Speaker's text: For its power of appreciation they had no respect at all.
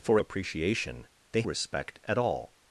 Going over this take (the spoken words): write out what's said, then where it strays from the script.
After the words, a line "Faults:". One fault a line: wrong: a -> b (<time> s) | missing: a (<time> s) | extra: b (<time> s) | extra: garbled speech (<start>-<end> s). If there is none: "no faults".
For appreciation they respect at all.
Faults:
missing: its power of (0.2 s)
missing: had no (1.4 s)